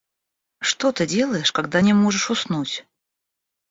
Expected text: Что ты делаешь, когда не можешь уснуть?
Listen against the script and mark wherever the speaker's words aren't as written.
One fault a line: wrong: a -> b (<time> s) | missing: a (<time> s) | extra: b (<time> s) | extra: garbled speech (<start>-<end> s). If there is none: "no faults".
no faults